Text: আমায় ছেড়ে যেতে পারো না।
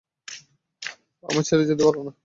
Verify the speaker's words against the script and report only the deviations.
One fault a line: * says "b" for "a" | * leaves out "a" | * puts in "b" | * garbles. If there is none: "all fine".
all fine